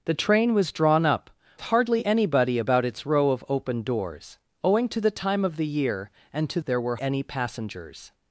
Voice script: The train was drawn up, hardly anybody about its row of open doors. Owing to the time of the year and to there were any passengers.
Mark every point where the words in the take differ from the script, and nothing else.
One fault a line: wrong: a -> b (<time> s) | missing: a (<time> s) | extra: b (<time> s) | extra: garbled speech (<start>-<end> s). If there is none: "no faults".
no faults